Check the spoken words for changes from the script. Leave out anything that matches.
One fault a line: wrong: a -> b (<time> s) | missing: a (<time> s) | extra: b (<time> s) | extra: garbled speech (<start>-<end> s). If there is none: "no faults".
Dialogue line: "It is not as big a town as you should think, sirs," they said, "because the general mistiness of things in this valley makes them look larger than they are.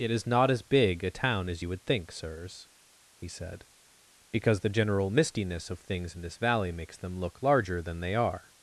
wrong: should -> would (1.7 s)
wrong: they -> he (3.2 s)